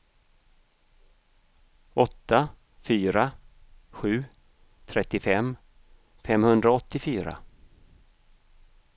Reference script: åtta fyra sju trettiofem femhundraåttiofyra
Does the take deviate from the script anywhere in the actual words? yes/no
no